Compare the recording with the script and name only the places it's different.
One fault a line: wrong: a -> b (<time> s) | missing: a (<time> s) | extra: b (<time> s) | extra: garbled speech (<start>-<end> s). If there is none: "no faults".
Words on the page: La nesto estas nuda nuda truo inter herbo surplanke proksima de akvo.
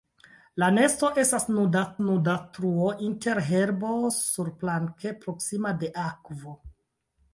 no faults